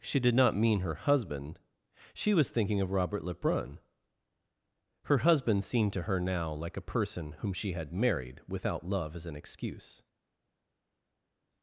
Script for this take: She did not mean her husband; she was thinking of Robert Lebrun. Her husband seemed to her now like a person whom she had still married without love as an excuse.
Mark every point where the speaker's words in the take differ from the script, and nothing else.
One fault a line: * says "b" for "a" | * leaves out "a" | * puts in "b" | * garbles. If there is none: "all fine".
* leaves out "still"